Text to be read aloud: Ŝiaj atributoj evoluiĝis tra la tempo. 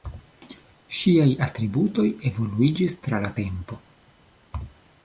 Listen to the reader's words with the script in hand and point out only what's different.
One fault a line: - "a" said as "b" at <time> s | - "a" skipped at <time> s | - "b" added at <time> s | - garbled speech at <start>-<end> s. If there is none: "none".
none